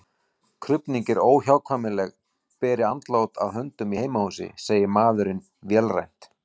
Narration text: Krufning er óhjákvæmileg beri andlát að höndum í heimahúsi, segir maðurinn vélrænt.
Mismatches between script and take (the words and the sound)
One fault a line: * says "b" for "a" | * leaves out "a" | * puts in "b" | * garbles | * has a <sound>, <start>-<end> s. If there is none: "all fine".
all fine